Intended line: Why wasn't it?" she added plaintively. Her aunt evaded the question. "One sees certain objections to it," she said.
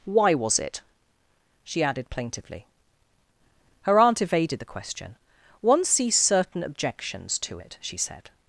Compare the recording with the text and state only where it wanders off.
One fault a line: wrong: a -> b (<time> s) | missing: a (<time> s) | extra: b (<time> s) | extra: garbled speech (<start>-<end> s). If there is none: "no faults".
wrong: wasn't -> was (0.3 s)